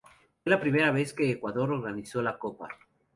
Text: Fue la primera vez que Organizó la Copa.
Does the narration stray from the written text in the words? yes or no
yes